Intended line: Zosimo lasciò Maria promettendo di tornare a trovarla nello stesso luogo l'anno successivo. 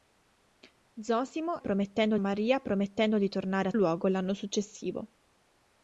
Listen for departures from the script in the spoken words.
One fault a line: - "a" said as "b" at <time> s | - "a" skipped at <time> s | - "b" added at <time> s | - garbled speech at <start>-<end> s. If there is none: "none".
- "lasciò" said as "promettendo" at 1.6 s
- "trovarla nello stesso" skipped at 3.7 s